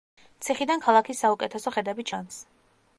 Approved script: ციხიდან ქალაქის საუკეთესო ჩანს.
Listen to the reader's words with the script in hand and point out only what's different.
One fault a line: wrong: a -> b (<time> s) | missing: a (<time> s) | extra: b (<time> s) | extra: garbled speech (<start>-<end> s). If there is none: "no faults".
extra: ხედები (1.8 s)